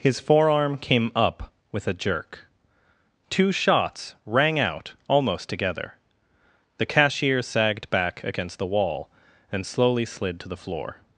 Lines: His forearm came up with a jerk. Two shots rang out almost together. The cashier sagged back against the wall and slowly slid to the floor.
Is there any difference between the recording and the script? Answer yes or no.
no